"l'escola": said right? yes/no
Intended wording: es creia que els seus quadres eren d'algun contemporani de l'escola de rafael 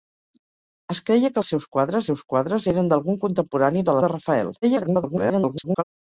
no